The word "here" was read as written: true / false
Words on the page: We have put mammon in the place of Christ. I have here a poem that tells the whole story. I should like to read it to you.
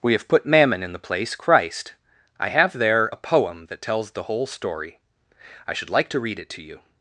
false